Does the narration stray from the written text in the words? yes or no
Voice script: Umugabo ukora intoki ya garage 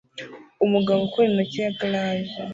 no